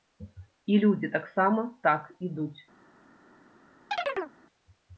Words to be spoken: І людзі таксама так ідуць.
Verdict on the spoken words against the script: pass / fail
pass